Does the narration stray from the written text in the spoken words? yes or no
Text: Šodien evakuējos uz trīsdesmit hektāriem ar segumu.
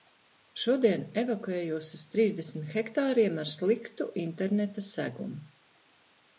yes